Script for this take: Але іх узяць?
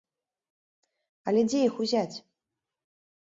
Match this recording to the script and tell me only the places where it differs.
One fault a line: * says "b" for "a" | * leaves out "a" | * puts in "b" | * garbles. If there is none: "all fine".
* puts in "дзе"